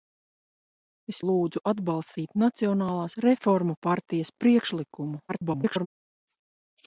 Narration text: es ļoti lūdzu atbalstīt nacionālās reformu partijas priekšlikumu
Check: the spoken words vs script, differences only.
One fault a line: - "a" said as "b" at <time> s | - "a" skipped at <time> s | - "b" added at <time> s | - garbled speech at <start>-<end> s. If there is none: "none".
- "ļoti" skipped at 1.2 s
- garbled speech at 5.3-5.9 s